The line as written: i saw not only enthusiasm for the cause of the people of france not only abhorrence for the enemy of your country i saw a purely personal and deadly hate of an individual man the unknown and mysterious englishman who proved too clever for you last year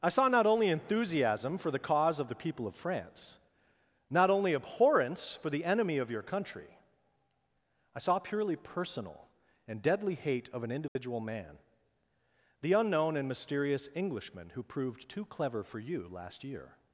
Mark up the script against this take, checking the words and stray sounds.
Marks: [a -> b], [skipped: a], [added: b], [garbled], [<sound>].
i saw not only enthusiasm for the cause of the people of france not only abhorrence for the enemy of your country i saw [skipped: a] purely personal and deadly hate of an individual [dropout] man the unknown and mysterious englishman who proved too clever for you last year